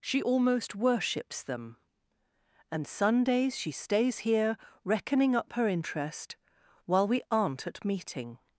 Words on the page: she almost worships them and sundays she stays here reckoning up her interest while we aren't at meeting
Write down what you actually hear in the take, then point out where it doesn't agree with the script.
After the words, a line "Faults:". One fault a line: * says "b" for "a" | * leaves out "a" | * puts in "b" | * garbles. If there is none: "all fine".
she almost worships them and sundays she stays here reckoning up her interest while we aren't at meeting
Faults:
all fine